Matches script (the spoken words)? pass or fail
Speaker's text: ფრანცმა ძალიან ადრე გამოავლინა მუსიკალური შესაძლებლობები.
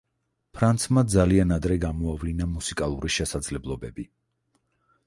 pass